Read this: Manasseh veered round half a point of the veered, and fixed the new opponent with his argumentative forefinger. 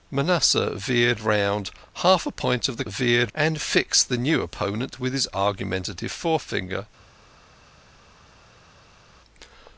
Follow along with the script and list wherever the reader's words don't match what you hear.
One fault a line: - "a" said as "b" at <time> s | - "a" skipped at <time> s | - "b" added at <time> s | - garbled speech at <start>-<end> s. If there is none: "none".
none